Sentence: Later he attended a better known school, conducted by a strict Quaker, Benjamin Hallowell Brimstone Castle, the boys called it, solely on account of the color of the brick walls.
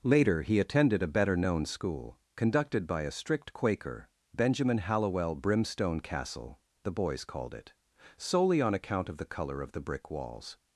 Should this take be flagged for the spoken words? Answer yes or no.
no